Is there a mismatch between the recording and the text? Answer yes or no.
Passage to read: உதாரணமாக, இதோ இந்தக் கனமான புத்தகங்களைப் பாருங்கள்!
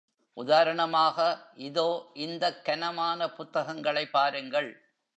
no